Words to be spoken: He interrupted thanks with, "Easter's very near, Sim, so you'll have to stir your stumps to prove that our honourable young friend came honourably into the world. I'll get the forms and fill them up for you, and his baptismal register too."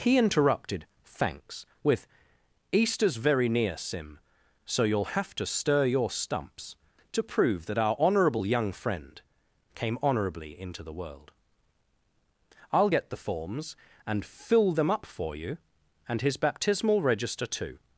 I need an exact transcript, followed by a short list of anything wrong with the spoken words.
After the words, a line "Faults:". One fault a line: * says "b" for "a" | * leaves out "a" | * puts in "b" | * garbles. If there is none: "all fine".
He interrupted thanks with, "Easter's very near, Sim, so you'll have to stir your stumps to prove that our honourable young friend came honourably into the world. I'll get the forms and fill them up for you, and his baptismal register too."
Faults:
all fine